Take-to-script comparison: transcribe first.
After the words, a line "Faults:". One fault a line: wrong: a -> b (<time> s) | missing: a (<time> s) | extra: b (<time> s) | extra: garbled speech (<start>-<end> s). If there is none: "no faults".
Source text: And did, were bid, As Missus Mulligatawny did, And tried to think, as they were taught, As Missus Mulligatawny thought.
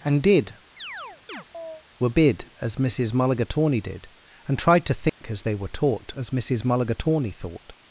And did, were bid, As Missus Mulligatawny did, And tried to think, as they were taught, As Missus Mulligatawny thought.
Faults:
no faults